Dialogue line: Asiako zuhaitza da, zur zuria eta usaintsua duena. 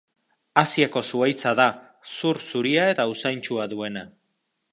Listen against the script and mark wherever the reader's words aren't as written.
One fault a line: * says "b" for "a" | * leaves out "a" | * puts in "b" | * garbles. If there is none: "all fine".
all fine